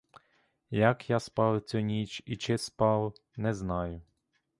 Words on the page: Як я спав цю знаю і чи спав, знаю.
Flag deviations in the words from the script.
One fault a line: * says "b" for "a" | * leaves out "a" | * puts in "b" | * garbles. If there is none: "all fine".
* says "ніч" for "знаю"
* puts in "не"